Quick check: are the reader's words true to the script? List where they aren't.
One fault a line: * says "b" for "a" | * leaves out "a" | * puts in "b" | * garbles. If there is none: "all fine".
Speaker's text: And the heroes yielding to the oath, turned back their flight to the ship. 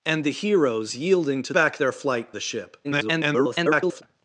* leaves out "the oath turned"
* leaves out "to"
* garbles